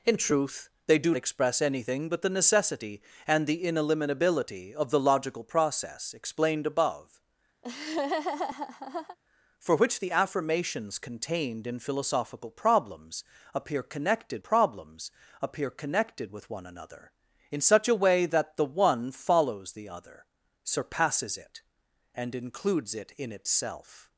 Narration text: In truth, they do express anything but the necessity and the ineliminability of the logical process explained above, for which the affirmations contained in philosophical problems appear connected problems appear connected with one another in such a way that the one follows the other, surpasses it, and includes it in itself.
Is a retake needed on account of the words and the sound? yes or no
yes